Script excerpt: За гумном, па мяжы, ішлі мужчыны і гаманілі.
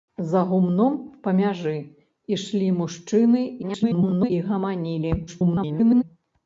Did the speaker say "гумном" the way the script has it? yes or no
yes